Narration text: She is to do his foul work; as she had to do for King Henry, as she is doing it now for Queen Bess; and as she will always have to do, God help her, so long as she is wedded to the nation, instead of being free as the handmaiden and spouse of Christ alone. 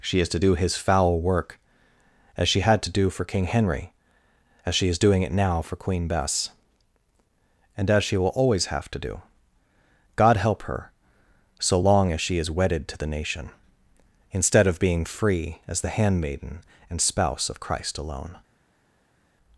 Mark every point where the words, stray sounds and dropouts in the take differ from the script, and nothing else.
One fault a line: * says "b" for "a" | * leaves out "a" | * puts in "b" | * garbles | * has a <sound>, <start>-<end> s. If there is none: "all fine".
all fine